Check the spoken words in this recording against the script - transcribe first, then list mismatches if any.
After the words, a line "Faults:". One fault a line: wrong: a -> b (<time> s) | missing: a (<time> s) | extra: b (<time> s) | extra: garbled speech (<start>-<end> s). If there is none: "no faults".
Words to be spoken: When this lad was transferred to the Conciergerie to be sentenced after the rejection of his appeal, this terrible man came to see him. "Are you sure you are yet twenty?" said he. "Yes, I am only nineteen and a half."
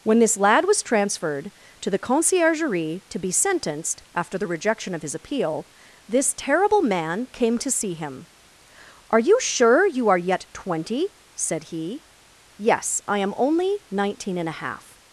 When this lad was transferred to the Conciergerie to be sentenced after the rejection of his appeal, this terrible man came to see him. "Are you sure you are yet twenty?" said he. "Yes, I am only nineteen and a half."
Faults:
no faults